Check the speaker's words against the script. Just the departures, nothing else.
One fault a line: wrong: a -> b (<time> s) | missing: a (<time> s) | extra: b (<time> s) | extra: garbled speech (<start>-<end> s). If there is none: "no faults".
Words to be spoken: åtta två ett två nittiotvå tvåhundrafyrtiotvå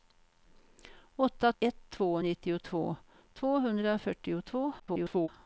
missing: två (1.5 s)
extra: garbled speech (4.8-5.3 s)